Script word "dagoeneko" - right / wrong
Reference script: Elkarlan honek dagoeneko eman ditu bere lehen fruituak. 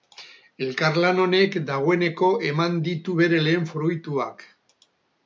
right